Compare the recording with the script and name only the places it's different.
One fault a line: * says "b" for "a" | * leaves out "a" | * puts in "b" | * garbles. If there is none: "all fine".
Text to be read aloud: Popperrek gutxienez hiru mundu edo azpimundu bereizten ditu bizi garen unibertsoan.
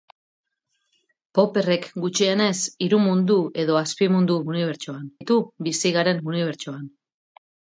* says "unibertsoan" for "bereizten"